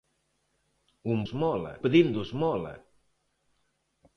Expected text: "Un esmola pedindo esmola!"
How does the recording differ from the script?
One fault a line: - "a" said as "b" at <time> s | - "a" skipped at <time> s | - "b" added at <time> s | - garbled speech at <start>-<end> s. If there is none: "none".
none